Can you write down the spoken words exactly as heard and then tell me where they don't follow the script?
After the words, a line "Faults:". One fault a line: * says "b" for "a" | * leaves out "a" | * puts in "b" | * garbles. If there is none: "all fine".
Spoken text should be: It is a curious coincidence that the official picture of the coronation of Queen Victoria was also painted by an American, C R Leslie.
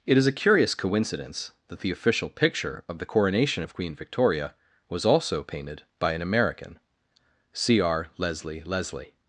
It is a curious coincidence that the official picture of the coronation of Queen Victoria was also painted by an American, C R Leslie Leslie.
Faults:
* puts in "Leslie"